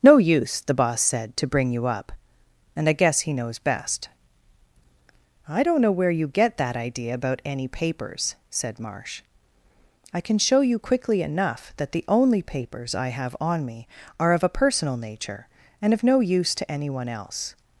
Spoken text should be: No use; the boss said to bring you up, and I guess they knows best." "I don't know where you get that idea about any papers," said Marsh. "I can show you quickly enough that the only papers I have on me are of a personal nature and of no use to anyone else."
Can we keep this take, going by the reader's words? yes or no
no